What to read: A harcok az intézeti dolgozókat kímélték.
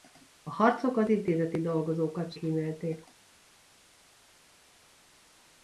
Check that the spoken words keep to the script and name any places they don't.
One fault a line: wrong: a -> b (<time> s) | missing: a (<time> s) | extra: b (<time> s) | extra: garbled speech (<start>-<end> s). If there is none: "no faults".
no faults